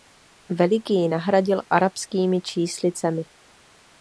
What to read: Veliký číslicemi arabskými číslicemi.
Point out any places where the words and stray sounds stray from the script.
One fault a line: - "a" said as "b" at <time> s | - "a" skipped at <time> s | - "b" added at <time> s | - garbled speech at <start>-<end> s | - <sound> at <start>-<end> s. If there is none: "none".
- "číslicemi" said as "nahradil" at 1.1 s